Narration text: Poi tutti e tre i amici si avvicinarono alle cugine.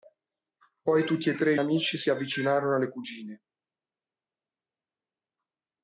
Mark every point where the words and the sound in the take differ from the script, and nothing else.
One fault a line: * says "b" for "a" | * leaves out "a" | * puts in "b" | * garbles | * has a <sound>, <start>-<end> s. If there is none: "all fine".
all fine